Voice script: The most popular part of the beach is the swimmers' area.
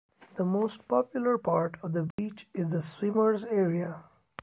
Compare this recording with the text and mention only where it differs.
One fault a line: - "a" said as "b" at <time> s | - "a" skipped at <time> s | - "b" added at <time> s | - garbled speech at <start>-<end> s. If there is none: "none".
none